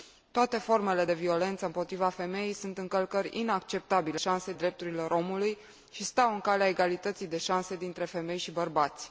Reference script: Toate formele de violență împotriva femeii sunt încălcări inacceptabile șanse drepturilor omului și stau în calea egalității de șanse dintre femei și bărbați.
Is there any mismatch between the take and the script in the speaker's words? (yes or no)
no